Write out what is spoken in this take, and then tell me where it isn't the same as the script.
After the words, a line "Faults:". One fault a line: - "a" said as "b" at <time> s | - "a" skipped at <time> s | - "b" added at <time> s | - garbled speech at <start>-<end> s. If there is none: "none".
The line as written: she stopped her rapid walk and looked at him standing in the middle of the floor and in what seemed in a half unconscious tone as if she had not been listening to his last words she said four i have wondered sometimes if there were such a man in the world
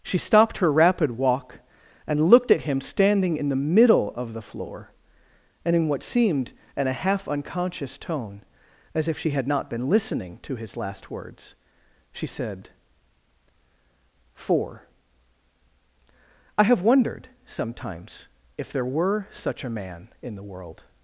she stopped her rapid walk and looked at him standing in the middle of the floor and in what seemed in a half unconscious tone as if she had not been listening to his last words she said four i have wondered sometimes if there were such a man in the world
Faults:
none